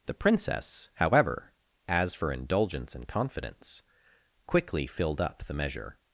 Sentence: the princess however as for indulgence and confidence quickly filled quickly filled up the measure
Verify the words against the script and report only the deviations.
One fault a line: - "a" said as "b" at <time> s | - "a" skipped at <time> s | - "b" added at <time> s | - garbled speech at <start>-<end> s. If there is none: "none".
- "quickly filled" skipped at 5.2 s